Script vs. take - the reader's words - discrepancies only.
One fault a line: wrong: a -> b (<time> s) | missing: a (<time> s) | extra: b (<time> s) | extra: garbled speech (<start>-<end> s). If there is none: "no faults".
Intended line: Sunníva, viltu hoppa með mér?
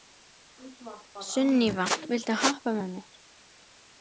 no faults